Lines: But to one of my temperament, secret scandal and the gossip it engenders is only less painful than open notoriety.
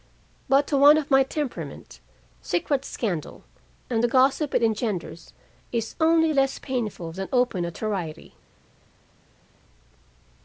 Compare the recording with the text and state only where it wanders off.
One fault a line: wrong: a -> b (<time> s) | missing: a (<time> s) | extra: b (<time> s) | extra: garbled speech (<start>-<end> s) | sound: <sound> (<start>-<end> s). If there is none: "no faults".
no faults